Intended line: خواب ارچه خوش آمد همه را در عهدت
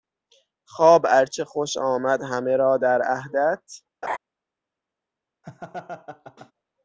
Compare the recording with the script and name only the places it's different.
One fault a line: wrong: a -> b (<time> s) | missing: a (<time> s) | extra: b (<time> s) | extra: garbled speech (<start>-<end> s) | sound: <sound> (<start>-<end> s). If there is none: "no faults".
sound: laugh (4.0-4.2 s)
sound: laugh (5.4-6.5 s)